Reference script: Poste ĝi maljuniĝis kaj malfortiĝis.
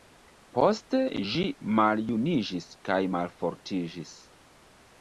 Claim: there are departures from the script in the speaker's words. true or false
false